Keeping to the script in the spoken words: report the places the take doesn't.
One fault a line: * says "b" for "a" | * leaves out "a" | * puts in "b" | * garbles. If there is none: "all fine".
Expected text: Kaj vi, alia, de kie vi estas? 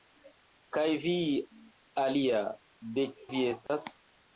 * leaves out "kie"